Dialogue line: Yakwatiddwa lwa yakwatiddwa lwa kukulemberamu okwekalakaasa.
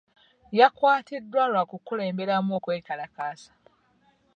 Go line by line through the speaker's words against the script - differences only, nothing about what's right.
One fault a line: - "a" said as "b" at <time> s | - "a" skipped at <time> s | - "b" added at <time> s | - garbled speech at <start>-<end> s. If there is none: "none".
- "yakwatiddwa lwa" skipped at 1.6 s